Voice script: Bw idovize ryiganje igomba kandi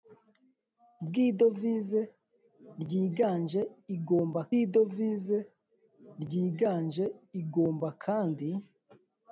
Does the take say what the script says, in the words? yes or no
no